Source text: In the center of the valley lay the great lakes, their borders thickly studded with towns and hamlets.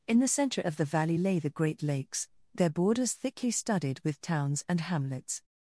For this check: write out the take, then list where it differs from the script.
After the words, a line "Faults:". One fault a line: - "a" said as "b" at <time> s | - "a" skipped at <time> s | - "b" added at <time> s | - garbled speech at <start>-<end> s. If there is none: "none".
In the center of the valley lay the great lakes, their borders thickly studded with towns and hamlets.
Faults:
none